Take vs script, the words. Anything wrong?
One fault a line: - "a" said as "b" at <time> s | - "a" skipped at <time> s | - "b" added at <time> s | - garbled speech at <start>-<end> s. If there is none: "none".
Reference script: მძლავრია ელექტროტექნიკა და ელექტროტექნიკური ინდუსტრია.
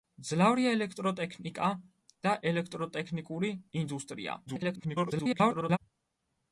- garbled speech at 4.5-5.8 s